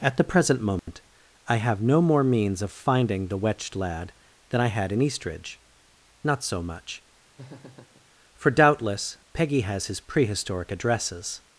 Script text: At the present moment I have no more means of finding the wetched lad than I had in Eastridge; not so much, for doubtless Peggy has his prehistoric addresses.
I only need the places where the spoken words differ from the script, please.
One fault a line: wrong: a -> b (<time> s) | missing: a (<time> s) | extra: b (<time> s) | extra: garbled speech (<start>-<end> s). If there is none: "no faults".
no faults